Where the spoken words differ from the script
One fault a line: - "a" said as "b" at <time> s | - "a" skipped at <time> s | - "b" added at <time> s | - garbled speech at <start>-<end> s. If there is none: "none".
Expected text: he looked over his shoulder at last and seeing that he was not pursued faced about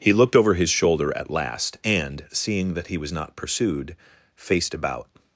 none